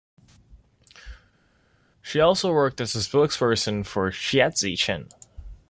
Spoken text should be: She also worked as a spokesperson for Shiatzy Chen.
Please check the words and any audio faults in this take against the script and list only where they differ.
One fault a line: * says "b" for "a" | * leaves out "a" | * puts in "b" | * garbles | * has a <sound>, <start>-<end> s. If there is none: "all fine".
all fine